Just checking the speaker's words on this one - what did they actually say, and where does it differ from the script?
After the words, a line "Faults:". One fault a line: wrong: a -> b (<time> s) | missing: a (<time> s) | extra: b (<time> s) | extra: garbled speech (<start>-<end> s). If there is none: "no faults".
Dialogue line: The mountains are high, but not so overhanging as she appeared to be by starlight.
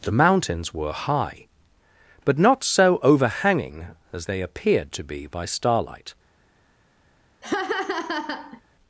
The mountains were high, but not so overhanging as they appeared to be by starlight.
Faults:
wrong: are -> were (0.7 s)
wrong: she -> they (4.2 s)